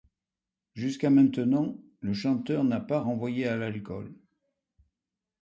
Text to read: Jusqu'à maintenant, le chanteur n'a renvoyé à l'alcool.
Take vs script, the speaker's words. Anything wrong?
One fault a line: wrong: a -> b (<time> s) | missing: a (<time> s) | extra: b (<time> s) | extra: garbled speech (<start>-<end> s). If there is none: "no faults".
extra: pas (2.8 s)